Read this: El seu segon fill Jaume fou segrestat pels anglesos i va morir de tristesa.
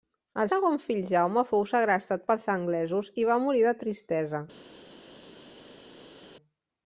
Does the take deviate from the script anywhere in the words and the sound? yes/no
yes